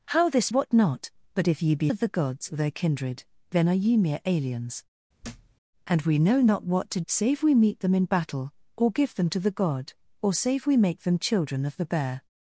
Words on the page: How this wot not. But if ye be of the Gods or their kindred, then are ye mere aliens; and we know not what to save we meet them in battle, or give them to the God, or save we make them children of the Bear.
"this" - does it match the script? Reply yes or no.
yes